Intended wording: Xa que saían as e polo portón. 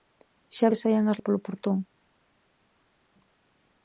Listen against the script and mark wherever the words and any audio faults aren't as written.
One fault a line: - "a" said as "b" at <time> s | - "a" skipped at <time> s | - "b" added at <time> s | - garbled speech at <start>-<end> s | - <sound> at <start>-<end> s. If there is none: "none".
none